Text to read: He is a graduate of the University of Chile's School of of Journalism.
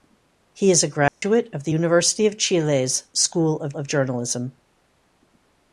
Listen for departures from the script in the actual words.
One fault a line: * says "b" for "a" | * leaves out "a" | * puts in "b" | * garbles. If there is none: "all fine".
all fine